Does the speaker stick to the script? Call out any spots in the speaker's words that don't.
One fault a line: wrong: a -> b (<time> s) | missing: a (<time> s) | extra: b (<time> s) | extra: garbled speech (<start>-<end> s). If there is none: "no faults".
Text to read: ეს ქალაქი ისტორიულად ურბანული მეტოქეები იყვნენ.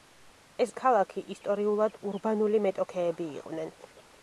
no faults